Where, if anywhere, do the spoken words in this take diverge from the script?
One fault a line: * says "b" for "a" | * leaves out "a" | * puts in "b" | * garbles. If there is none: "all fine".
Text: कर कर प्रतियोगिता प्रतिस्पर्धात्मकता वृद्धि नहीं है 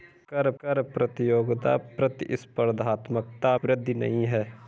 all fine